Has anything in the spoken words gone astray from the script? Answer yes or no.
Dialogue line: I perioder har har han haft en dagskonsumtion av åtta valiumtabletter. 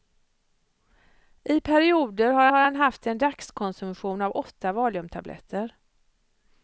no